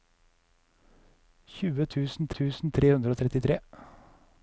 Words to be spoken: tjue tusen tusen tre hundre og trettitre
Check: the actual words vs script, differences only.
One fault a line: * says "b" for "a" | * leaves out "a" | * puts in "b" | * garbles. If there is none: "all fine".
all fine